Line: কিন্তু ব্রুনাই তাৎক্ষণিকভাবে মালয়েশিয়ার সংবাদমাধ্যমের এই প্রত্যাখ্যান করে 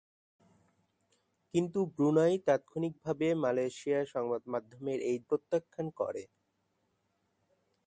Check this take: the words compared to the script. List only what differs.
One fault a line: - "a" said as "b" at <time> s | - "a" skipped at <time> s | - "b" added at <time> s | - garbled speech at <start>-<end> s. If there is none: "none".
none